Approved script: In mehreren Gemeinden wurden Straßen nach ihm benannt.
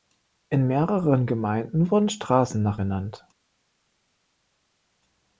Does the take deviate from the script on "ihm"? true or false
true